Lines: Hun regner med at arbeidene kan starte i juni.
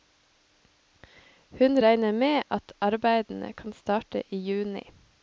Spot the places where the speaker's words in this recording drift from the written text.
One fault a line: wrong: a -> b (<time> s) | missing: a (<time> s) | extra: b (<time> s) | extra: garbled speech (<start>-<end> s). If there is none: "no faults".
no faults